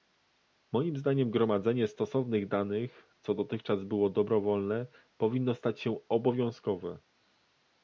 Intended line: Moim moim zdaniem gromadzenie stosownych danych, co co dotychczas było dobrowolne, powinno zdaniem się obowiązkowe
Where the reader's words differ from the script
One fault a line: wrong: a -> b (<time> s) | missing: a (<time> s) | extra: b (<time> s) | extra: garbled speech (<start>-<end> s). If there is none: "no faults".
missing: moim (1.0 s)
missing: co (3.3 s)
wrong: zdaniem -> stać (5.5 s)